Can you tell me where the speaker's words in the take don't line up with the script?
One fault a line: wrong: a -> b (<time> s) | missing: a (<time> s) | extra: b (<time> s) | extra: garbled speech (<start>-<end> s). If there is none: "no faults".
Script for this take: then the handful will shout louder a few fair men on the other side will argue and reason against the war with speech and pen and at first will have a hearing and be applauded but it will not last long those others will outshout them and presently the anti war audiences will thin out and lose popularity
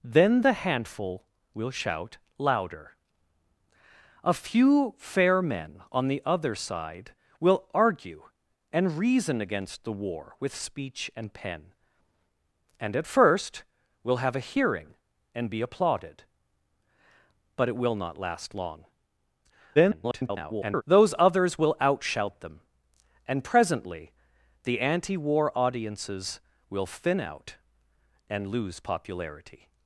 extra: garbled speech (19.8-20.8 s)